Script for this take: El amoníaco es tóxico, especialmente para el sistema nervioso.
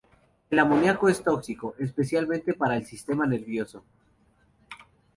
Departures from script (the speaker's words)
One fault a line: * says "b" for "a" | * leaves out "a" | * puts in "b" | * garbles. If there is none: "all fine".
all fine